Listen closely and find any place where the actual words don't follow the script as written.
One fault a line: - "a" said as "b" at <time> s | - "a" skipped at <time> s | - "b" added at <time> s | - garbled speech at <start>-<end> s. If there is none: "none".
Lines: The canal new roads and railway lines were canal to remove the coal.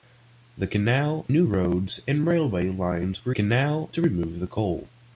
none